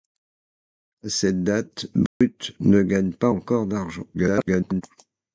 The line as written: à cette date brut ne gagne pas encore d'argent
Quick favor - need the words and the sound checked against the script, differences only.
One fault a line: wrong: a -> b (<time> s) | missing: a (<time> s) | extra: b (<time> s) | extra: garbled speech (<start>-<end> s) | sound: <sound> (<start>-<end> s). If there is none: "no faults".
sound: dropout (2.1-2.2 s)
extra: garbled speech (4.1-4.8 s)